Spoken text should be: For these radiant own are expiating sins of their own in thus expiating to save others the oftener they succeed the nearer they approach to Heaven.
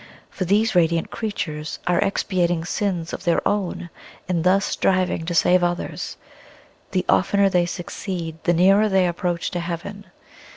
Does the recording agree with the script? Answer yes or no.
no